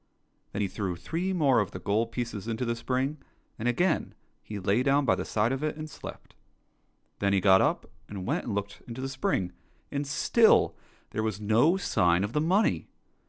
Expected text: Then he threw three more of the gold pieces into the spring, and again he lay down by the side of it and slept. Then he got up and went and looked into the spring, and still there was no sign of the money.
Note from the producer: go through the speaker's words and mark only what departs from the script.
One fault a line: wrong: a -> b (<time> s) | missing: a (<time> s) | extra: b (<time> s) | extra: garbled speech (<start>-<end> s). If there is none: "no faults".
no faults